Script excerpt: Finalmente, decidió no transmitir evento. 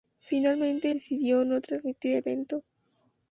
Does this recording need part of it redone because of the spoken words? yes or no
no